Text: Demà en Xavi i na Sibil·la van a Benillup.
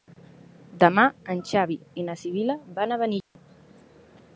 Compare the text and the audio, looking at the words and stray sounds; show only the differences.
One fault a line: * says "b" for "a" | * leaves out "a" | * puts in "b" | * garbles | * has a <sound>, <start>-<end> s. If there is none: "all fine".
* has a dropout, 3.2-3.4 s